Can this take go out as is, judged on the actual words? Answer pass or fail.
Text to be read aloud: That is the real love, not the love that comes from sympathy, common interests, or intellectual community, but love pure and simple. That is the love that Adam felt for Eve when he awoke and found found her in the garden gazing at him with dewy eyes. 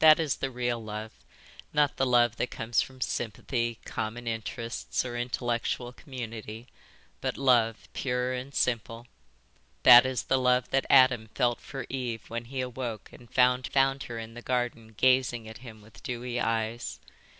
pass